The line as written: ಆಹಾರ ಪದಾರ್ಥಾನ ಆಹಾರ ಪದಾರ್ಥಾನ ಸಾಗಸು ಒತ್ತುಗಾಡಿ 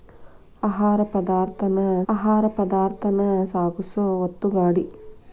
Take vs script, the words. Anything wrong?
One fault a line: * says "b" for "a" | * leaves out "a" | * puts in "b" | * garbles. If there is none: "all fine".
all fine